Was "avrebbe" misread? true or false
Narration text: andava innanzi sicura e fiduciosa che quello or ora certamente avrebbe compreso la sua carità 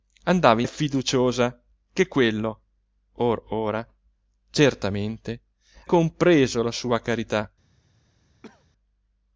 true